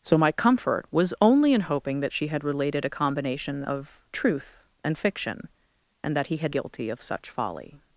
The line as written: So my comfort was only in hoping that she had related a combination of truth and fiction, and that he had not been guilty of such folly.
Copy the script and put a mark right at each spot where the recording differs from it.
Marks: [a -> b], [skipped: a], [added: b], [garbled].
So my comfort was only in hoping that she had related a combination of truth and fiction, and that he had [skipped: not been] guilty of such folly.